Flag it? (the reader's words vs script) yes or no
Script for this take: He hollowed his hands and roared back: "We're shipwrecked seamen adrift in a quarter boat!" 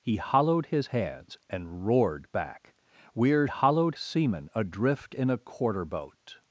yes